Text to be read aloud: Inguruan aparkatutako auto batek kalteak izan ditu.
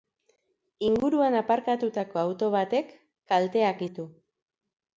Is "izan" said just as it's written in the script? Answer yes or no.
no